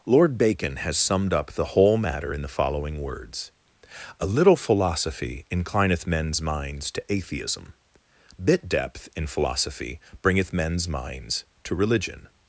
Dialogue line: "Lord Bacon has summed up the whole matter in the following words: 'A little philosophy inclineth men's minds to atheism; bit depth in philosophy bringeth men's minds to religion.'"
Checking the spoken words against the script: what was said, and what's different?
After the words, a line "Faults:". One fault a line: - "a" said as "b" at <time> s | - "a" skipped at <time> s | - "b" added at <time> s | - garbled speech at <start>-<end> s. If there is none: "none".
"Lord Bacon has summed up the whole matter in the following words: 'A little philosophy inclineth men's minds to atheism; bit depth in philosophy bringeth men's minds to religion.'"
Faults:
none